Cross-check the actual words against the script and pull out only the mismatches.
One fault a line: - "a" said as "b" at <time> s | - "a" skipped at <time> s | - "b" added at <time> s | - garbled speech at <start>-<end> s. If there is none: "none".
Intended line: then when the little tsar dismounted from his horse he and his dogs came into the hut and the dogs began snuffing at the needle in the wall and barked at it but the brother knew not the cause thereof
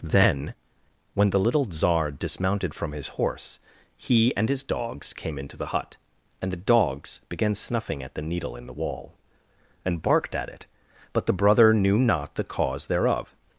none